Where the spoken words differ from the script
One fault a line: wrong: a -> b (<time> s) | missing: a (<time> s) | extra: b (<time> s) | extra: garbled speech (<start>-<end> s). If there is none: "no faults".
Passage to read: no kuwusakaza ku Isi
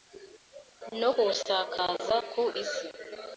no faults